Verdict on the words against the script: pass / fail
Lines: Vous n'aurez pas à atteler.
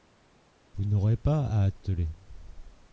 pass